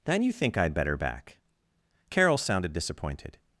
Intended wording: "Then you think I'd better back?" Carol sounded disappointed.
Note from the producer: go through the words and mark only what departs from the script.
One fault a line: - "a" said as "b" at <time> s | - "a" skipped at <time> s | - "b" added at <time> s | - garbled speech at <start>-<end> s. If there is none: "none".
none